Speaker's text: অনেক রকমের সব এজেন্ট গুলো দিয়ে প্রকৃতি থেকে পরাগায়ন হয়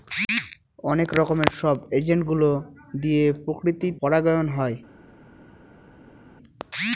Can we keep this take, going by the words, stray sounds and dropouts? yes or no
no